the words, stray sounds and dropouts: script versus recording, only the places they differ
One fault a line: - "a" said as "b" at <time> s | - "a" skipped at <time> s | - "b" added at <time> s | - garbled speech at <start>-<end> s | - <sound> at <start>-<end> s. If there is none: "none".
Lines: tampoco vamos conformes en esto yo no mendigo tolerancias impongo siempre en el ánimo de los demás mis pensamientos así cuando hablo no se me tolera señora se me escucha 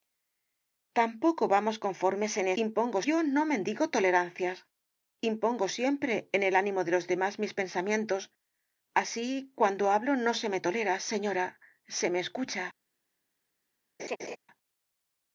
- "esto" said as "impongo" at 2.6 s
- laugh at 14.0-14.4 s